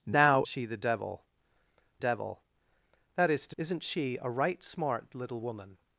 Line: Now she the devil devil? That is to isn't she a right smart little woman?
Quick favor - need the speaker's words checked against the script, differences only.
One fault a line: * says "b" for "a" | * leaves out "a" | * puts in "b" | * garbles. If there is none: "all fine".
all fine